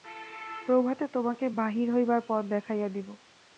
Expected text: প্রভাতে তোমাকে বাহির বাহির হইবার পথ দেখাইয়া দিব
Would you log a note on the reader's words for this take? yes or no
yes